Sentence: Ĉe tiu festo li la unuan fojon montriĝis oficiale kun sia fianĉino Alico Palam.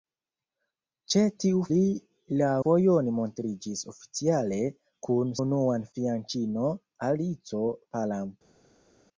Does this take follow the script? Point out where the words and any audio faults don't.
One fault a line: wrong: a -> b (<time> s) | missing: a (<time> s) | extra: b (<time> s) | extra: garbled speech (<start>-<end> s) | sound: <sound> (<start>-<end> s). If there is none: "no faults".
missing: festo (1.6 s)
missing: unuan (2.5 s)
wrong: sia -> unuan (5.4 s)